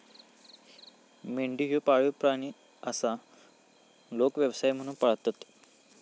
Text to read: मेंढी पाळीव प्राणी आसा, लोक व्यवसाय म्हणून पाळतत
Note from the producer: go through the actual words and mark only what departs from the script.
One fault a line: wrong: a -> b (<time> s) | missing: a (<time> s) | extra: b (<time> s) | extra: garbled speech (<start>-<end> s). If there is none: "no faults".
extra: ह्यो (1.7 s)